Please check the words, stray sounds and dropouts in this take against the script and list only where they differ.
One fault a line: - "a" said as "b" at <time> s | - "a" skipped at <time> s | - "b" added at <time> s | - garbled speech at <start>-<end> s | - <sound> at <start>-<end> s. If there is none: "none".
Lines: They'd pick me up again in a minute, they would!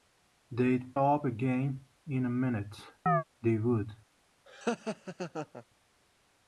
- "pick me" skipped at 1.0 s
- chirp at 3.1-3.2 s
- laugh at 4.5-5.6 s